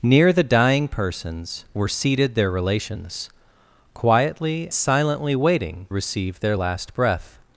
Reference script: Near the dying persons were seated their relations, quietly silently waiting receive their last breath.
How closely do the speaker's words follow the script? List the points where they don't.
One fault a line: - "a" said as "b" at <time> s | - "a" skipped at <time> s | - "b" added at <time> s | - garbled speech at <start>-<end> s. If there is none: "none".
none